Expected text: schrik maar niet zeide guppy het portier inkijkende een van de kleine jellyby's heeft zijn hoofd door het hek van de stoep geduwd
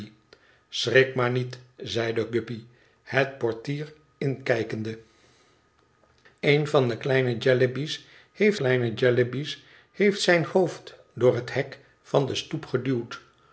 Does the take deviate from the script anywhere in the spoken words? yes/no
yes